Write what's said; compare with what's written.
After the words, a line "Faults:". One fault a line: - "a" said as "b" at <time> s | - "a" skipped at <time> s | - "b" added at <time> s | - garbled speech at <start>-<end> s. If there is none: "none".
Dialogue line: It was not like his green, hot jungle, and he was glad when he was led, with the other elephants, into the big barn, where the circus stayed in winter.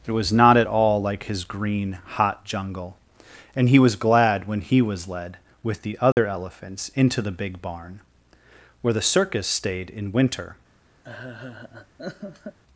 It was not at all like his green, hot jungle, and he was glad when he was led, with the other elephants, into the big barn, where the circus stayed in winter.
Faults:
- "at all" added at 0.6 s